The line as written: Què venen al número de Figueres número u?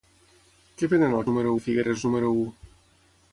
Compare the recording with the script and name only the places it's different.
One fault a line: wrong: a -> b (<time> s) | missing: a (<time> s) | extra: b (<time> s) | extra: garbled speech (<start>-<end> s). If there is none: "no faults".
no faults